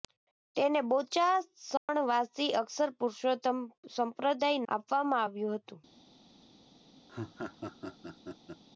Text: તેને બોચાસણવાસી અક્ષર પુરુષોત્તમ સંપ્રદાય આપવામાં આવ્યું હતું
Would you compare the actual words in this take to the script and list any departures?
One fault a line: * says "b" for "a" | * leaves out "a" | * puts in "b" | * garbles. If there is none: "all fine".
all fine